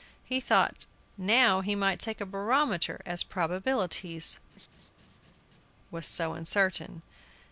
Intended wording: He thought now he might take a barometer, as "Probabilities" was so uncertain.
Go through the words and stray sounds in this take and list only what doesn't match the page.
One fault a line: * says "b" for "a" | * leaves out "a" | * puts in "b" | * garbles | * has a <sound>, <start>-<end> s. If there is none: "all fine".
* has a laugh, 4.5-5.7 s